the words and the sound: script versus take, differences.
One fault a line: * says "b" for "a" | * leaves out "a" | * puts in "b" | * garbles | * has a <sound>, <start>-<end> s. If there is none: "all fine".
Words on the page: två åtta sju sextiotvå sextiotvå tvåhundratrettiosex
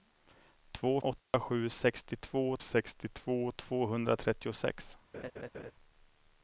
* has a dropout, 1.2-1.3 s
* has a laugh, 5.1-5.7 s